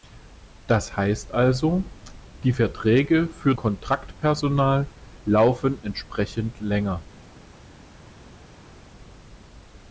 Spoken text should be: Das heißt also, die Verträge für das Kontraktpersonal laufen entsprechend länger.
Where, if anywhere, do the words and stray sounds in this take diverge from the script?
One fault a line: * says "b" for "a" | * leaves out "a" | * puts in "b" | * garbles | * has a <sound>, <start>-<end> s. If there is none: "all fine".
* leaves out "das"